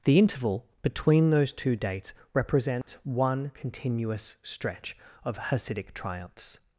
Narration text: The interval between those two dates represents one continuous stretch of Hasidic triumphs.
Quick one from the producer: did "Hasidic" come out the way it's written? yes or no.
yes